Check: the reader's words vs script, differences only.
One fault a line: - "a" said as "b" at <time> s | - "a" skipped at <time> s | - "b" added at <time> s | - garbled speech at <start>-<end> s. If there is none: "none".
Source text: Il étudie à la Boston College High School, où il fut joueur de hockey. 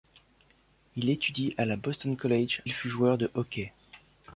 - "High School où" skipped at 2.6 s